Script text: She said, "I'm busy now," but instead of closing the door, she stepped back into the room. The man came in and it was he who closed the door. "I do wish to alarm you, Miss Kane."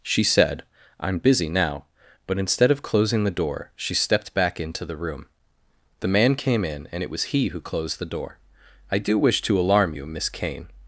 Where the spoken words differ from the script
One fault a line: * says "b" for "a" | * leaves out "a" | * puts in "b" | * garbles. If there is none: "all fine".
all fine